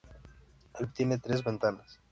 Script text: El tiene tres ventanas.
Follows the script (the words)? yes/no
yes